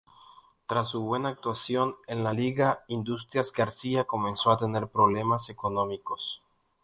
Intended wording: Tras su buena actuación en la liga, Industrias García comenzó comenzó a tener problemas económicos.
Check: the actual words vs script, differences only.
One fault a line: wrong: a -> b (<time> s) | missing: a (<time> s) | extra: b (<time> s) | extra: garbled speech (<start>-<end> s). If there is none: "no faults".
missing: comenzó (4.5 s)